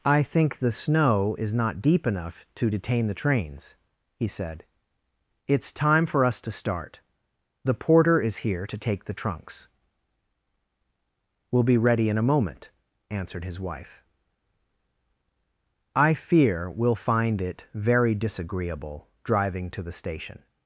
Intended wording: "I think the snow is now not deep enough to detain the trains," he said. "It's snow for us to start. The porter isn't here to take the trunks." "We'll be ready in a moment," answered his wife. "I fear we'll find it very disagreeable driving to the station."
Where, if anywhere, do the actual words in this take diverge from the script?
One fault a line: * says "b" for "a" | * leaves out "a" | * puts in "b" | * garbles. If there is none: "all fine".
* leaves out "now"
* says "time" for "snow"
* says "is" for "isn't"